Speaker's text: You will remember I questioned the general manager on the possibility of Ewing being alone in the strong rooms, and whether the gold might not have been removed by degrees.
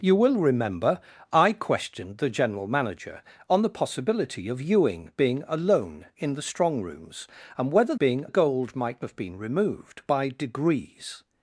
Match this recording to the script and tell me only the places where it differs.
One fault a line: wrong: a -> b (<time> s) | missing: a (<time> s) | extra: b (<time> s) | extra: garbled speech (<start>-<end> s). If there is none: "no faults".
wrong: the -> being (8.0 s)
missing: not (9.0 s)